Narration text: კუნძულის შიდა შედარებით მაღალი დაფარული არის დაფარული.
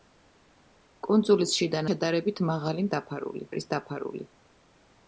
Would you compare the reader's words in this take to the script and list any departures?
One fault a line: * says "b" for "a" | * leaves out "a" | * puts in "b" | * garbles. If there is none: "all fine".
all fine